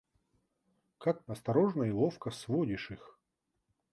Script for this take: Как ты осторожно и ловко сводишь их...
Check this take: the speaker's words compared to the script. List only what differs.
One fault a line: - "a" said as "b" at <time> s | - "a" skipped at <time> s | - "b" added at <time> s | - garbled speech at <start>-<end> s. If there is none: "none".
- "ты" skipped at 1.2 s